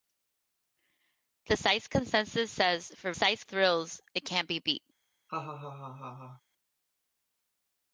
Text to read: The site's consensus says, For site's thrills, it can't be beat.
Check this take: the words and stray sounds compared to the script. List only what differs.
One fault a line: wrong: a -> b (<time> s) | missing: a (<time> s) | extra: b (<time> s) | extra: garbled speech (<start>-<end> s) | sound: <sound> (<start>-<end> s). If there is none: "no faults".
sound: laugh (5.3-6.4 s)